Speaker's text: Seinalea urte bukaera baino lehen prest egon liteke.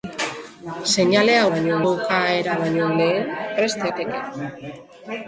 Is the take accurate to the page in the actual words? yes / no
no